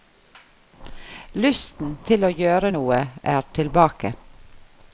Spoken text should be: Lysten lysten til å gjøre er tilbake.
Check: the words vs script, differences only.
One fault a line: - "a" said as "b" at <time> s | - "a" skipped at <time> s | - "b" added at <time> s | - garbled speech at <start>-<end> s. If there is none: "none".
- "lysten" skipped at 1.9 s
- "noe" added at 2.7 s